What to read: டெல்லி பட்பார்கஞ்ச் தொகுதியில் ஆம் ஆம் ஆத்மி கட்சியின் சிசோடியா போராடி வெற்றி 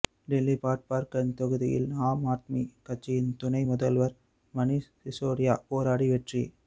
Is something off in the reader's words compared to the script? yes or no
yes